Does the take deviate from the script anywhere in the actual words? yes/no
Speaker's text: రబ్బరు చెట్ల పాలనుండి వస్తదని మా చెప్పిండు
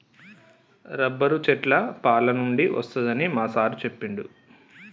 yes